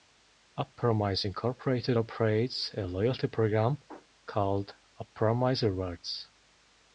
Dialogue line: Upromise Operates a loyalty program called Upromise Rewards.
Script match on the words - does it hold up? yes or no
no